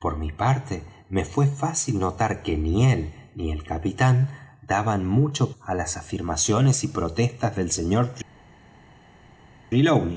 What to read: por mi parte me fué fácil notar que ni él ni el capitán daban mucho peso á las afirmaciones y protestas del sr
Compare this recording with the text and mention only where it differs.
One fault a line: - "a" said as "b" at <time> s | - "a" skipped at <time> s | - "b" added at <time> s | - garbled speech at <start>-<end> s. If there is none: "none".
- "peso" skipped at 5.5 s